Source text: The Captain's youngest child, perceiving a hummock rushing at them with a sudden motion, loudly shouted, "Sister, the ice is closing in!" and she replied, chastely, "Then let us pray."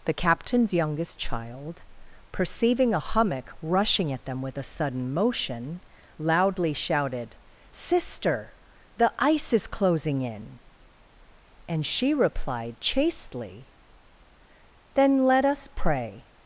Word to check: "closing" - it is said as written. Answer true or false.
true